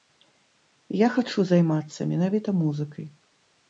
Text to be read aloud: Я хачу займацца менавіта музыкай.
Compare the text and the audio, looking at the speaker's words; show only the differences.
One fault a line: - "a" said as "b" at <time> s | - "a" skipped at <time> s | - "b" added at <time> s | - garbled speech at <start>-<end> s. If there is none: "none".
none